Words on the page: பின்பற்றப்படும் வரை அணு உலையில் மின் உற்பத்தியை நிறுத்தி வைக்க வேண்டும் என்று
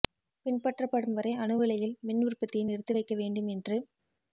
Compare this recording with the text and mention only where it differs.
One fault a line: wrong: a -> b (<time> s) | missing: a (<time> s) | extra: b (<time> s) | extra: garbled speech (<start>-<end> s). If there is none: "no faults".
no faults